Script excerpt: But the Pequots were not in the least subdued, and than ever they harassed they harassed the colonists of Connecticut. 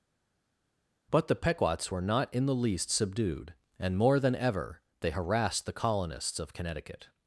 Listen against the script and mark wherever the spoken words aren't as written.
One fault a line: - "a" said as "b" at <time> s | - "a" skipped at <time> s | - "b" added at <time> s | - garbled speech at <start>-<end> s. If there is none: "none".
- "more" added at 4.0 s
- "they harassed" skipped at 5.7 s